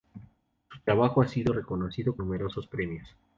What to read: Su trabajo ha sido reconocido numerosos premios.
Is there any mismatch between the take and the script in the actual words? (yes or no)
no